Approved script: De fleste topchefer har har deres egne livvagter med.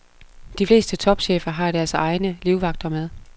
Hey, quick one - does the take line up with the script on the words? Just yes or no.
no